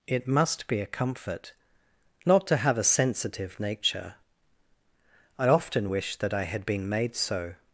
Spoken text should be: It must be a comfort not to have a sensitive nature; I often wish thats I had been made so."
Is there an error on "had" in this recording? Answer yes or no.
no